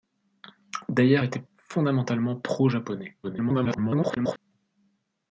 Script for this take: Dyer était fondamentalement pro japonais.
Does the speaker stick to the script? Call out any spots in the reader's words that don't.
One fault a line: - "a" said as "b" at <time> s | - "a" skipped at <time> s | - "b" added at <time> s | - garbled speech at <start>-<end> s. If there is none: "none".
- garbled speech at 3.2-4.4 s